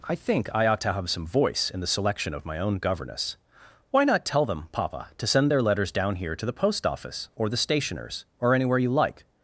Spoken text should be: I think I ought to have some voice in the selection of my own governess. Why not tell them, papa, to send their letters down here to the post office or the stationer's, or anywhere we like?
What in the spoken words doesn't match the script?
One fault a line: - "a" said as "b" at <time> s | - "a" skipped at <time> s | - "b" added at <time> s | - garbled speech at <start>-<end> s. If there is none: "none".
- "we" said as "you" at 8.8 s